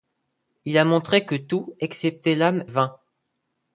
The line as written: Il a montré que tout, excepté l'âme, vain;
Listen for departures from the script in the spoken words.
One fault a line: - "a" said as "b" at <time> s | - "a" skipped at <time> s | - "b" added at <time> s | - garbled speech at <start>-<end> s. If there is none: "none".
none